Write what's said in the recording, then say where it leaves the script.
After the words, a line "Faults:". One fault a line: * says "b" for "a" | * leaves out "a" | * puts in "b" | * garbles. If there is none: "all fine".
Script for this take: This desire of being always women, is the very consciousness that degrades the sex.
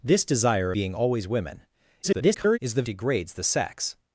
This desire being always women, [garbled] is the degrades the sex.
Faults:
* leaves out "of"
* garbles
* leaves out "very consciousness that"